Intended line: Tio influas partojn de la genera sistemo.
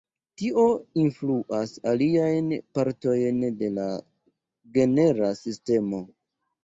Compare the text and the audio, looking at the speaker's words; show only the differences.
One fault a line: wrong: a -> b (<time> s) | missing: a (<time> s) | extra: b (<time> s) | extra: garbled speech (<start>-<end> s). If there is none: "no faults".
extra: aliajn (1.9 s)